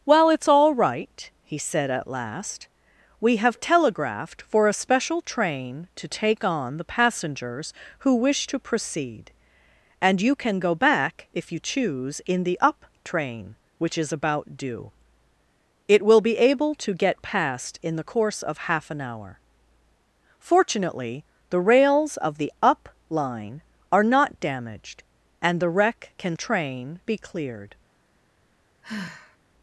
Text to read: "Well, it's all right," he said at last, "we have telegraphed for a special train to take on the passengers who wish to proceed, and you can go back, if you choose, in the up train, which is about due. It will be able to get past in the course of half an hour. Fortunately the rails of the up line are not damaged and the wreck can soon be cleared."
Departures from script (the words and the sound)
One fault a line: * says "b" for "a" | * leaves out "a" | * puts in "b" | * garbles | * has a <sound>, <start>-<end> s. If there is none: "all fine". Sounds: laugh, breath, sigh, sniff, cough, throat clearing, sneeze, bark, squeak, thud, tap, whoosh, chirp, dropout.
* says "train" for "soon"
* has a sigh, 28.8-29.4 s